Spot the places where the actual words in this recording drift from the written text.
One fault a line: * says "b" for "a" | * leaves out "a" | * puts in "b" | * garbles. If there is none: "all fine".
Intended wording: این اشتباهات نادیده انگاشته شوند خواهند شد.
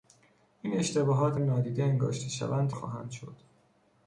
all fine